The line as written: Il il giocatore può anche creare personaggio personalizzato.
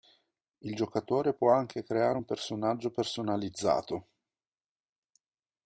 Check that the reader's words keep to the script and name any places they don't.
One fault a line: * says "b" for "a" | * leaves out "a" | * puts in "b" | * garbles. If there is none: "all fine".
* leaves out "il"
* puts in "un"